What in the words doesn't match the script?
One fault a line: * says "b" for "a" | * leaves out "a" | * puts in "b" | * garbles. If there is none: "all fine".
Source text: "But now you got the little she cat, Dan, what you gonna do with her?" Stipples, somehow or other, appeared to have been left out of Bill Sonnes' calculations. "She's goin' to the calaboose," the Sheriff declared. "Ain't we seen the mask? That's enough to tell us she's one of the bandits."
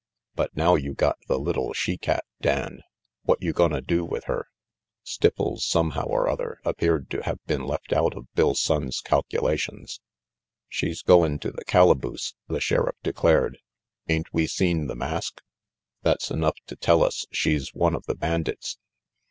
all fine